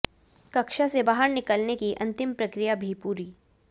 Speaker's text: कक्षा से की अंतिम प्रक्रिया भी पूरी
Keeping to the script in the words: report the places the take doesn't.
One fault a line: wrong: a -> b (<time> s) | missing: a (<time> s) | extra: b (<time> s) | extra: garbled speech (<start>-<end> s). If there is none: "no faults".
extra: बाहर निकलने (1.0 s)